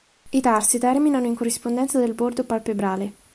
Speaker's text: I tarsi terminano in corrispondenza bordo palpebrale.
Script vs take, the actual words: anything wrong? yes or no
yes